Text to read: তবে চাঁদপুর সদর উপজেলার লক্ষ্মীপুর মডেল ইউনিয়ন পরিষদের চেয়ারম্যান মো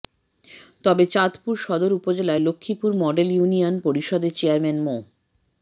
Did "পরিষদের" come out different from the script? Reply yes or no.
no